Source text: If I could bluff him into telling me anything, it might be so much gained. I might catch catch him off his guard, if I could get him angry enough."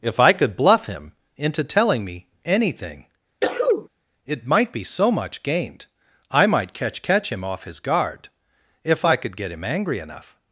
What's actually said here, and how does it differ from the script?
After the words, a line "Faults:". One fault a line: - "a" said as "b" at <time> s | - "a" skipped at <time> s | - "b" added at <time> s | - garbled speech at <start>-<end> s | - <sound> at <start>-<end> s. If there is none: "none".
If I could bluff him into telling me anything, it might be so much gained. I might catch catch him off his guard, if I could get him angry enough."
Faults:
- sneeze at 3.4-3.9 s